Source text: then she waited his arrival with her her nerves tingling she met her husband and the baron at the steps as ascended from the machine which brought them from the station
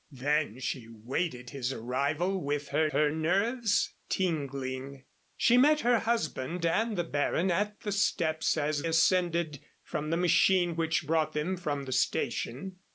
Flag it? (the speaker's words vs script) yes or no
no